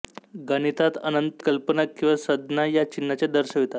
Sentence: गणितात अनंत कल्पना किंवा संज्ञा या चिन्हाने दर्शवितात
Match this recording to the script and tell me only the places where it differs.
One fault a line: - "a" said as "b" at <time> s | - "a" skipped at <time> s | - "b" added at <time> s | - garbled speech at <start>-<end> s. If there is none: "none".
none